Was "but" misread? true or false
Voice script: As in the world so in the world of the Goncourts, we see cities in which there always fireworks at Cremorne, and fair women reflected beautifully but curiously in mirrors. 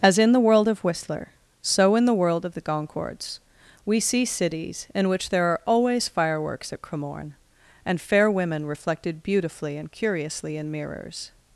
true